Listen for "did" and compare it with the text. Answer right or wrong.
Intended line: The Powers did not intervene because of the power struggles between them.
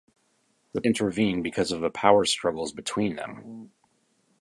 wrong